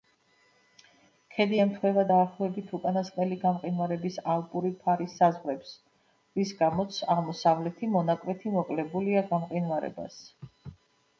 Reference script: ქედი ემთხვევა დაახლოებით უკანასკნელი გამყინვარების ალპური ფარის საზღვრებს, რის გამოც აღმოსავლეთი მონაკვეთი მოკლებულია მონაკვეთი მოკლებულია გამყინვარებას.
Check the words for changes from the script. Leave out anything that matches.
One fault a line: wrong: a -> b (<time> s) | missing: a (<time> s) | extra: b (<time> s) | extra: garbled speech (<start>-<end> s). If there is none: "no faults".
missing: მონაკვეთი მოკლებულია (9.3 s)